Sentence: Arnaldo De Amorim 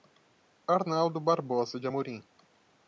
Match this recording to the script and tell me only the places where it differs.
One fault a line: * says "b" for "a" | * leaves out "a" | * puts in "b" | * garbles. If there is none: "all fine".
* puts in "Barbosa"